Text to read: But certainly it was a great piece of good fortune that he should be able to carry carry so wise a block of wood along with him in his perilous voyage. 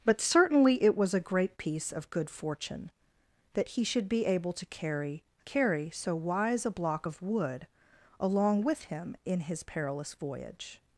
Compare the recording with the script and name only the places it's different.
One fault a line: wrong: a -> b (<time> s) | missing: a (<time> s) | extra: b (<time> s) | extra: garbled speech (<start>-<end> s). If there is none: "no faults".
no faults